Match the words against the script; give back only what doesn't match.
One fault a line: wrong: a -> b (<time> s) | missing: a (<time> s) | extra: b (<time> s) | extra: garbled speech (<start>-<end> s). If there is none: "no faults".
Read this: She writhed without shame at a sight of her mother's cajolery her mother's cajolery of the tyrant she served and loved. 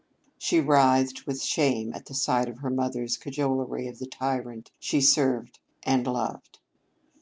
wrong: without -> with (1.3 s)
wrong: a -> the (2.0 s)
missing: her mother's cajolery (3.9 s)